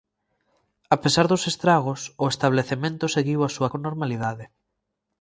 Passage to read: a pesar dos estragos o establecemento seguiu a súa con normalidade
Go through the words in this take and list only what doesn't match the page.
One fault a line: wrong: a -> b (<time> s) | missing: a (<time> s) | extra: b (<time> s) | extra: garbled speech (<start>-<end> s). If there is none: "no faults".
no faults